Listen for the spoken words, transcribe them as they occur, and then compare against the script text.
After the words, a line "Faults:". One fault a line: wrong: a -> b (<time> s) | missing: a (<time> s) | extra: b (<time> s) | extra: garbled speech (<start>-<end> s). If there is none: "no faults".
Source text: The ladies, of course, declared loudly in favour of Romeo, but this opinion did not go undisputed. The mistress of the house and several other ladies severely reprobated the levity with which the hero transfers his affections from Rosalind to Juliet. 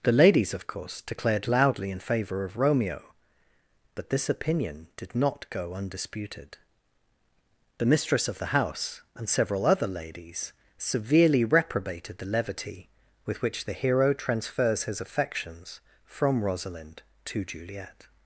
The ladies, of course, declared loudly in favour of Romeo, but this opinion did not go undisputed. The mistress of the house and several other ladies severely reprobated the levity with which the hero transfers his affections from Rosalind to Juliet.
Faults:
no faults